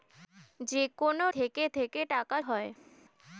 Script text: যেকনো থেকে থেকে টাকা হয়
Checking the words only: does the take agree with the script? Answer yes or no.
yes